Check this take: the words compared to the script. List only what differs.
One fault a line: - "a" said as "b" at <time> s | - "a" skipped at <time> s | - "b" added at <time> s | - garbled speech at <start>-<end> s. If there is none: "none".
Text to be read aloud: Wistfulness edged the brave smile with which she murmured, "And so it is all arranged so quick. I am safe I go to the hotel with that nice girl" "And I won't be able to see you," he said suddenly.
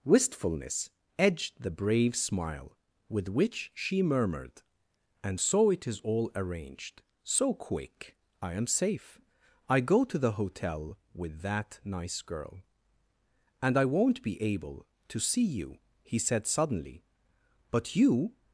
- "But you" added at 17.7 s